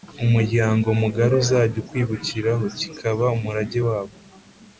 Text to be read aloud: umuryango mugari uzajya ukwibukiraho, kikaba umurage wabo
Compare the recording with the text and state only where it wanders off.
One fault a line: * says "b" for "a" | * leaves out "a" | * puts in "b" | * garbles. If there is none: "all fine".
all fine